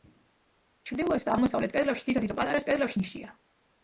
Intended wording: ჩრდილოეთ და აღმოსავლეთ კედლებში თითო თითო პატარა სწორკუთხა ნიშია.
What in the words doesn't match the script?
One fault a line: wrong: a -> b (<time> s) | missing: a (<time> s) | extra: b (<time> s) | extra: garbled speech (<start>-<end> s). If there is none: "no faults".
wrong: სწორკუთხა -> კედლებში (2.7 s)